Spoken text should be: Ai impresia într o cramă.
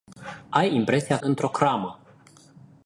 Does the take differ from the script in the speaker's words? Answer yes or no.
no